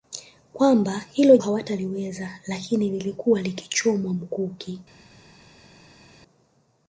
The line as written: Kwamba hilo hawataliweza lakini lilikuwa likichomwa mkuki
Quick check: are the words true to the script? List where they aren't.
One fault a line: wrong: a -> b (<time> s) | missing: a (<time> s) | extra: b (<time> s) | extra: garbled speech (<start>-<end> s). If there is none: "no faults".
no faults